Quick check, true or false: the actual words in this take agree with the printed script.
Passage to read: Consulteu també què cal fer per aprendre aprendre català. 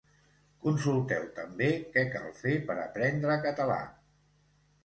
false